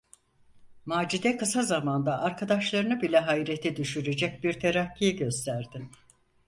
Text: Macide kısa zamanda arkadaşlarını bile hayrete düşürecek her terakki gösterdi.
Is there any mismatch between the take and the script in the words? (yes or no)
yes